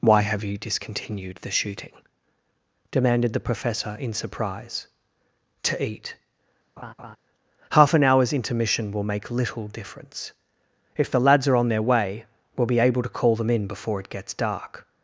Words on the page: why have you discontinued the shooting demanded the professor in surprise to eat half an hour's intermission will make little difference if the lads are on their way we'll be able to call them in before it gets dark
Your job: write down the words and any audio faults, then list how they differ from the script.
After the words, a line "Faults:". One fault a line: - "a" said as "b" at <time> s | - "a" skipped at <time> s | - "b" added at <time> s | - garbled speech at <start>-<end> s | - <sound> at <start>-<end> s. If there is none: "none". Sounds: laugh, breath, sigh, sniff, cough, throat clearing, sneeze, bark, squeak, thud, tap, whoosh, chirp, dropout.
why have you discontinued the shooting demanded the professor in surprise to eat half an hour's intermission will make little difference if the lads are on their way we'll be able to call them in before it gets dark
Faults:
- laugh at 6.8-7.2 s